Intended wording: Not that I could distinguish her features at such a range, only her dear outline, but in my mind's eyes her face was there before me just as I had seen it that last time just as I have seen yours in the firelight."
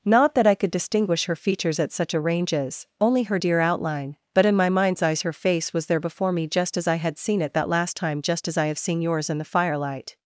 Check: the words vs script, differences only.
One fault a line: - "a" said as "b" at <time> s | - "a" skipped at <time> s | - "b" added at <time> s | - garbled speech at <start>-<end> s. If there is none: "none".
- "range" said as "ranges" at 2.2 s